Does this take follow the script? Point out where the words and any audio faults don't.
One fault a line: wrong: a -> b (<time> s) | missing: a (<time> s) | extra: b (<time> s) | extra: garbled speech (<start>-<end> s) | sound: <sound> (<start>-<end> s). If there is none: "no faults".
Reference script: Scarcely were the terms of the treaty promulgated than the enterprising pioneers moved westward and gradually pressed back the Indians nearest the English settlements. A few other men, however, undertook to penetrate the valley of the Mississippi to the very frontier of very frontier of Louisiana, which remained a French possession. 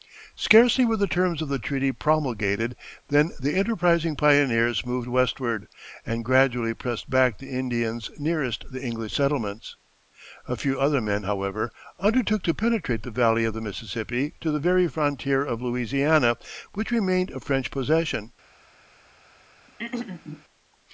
missing: very frontier of (15.6 s)
sound: throat clearing (19.7-20.4 s)